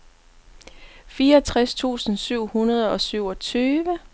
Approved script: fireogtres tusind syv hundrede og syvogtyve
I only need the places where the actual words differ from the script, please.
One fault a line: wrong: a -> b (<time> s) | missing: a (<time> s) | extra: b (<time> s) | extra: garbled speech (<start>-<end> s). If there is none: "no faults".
no faults